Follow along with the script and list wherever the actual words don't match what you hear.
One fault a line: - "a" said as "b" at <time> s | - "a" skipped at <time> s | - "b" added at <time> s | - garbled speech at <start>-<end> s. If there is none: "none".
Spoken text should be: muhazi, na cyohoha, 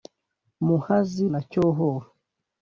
none